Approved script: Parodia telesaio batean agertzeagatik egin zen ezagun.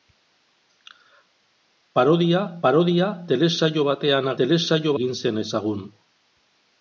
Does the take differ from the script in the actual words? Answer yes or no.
yes